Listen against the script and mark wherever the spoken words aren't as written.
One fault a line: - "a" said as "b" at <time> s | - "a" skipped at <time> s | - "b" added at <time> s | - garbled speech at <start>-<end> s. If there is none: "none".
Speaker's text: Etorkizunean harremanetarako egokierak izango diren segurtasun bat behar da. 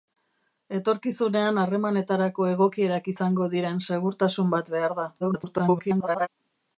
- garbled speech at 5.2-6.3 s